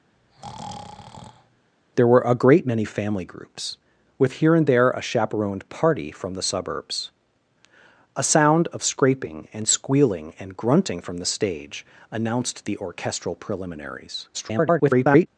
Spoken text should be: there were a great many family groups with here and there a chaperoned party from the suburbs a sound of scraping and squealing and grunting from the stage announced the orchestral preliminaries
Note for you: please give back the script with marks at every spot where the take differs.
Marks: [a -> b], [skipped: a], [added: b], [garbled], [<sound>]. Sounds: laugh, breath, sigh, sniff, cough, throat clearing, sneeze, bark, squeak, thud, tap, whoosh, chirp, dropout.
[breath] there were a great many family groups with here and there a chaperoned party from the suburbs a sound of scraping and squealing and grunting from the stage announced the orchestral preliminaries [garbled]